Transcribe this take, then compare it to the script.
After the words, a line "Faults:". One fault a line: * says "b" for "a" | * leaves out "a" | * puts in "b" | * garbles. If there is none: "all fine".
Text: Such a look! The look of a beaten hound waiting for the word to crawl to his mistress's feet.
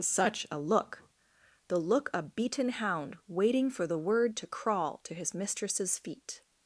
Such a look! The look a beaten hound waiting for the word to crawl to his mistress's feet.
Faults:
* leaves out "of"